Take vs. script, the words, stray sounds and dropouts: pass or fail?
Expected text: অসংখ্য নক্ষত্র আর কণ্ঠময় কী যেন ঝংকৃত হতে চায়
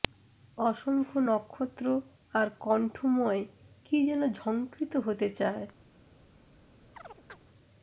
fail